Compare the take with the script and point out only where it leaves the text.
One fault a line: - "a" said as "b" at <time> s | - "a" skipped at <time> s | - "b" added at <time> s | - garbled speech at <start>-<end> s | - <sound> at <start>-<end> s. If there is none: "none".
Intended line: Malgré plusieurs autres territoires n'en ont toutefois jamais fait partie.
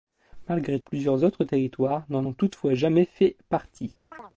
- chirp at 4.1-4.3 s